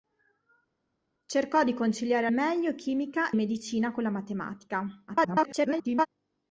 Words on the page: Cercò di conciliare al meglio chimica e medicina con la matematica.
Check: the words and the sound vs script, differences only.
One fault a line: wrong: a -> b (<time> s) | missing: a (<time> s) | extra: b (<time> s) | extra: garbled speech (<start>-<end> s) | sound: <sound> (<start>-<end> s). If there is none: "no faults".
missing: al (2.3 s)
missing: e (3.3 s)
extra: garbled speech (5.1-6.1 s)